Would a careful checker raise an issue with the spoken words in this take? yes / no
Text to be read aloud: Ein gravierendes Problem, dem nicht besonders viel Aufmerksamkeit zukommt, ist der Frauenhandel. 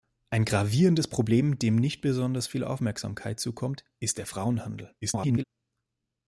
yes